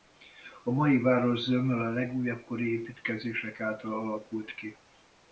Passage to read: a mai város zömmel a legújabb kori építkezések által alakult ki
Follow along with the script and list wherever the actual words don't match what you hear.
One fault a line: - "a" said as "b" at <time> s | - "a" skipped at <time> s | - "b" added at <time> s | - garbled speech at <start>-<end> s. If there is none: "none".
none